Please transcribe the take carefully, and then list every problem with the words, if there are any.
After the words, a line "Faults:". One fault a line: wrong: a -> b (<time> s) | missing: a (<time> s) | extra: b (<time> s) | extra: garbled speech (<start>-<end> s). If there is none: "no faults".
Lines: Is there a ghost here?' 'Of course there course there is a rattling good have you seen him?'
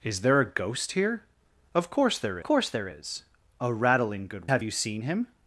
Is there a ghost here?' 'Of course there course there is a rattling good have you seen him?'
Faults:
no faults